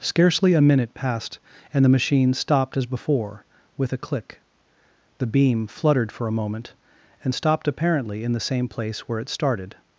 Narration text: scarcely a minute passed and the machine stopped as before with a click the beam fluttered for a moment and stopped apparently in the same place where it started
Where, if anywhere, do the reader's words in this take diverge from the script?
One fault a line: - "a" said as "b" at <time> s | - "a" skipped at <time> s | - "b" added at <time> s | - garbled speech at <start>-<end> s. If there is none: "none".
none